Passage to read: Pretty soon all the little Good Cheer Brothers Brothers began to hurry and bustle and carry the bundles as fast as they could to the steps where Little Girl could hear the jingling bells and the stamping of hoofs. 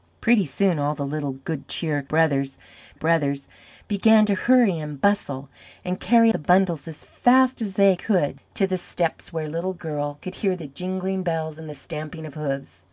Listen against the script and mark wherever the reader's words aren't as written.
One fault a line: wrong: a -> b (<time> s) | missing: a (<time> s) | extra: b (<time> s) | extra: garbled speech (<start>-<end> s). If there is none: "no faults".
no faults